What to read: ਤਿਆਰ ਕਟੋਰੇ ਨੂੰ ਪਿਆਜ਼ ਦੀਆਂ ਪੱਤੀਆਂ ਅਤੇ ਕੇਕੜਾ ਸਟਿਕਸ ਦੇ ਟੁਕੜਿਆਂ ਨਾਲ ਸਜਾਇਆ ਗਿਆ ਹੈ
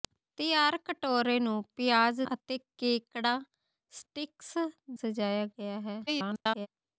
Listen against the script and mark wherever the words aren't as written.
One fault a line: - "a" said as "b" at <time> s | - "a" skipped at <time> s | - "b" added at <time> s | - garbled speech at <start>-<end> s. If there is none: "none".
- "ਦੀਆਂ ਪੱਤੀਆਂ" skipped at 2.2 s
- "ਦੇ ਟੁਕੜਿਆਂ ਨਾਲ" skipped at 4.5 s
- garbled speech at 6.1-6.7 s